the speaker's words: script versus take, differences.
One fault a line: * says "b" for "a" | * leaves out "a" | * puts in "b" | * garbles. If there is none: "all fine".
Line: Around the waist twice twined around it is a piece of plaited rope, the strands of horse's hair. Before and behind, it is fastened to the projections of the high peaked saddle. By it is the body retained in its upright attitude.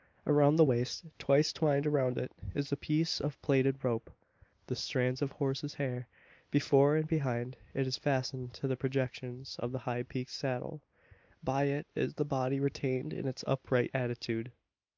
all fine